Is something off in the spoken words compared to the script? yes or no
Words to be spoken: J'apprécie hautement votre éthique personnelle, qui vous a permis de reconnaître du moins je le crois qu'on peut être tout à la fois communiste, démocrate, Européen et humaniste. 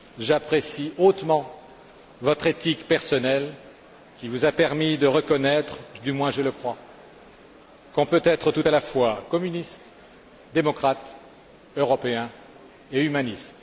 no